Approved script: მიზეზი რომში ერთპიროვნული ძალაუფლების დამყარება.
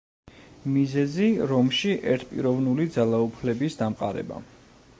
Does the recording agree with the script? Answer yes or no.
yes